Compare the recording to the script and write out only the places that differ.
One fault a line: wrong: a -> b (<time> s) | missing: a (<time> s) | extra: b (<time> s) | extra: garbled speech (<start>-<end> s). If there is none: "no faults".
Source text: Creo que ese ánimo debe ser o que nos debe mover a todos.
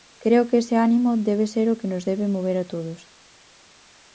no faults